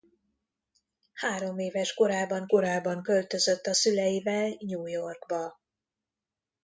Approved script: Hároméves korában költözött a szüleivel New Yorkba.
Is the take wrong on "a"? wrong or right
right